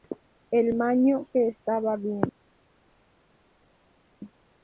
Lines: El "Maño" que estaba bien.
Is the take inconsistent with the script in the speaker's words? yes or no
no